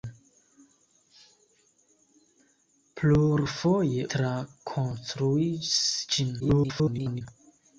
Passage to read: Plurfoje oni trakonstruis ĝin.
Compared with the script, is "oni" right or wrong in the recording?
wrong